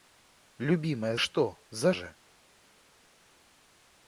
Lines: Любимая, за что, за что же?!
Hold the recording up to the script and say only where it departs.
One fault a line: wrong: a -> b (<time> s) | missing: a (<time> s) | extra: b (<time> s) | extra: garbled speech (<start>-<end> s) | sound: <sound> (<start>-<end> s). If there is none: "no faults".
missing: за (1.1 s)
missing: что (1.9 s)